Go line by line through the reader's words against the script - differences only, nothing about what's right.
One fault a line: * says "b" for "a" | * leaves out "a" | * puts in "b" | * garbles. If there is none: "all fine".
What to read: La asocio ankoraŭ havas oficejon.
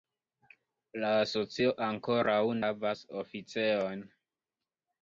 all fine